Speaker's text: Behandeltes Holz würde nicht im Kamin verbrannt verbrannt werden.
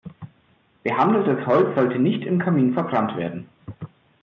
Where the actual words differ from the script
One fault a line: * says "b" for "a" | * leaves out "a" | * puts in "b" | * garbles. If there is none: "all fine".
* says "sollte" for "würde"
* leaves out "verbrannt"